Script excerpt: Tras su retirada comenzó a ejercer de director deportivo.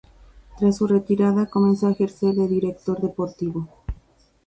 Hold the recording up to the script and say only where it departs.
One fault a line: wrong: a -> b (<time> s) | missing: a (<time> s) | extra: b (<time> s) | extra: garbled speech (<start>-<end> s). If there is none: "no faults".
no faults